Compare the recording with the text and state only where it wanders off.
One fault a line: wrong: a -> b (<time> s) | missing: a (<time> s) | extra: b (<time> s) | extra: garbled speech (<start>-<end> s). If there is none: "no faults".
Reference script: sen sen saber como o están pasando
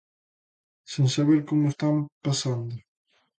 missing: sen (1.1 s)